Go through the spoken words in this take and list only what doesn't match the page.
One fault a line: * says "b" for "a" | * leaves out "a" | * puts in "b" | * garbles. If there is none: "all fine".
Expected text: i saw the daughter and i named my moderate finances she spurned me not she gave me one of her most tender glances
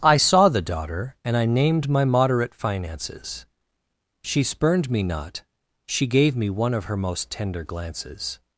all fine